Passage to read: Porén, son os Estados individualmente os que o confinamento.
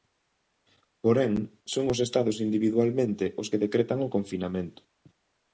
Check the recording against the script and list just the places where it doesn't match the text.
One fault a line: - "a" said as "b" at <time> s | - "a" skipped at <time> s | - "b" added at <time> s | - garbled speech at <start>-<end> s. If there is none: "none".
- "decretan" added at 3.6 s